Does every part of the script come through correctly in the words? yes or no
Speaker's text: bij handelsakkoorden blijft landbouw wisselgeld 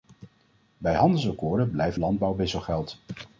yes